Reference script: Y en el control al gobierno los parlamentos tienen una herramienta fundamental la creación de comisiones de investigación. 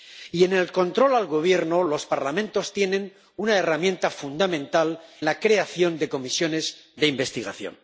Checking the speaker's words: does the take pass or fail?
pass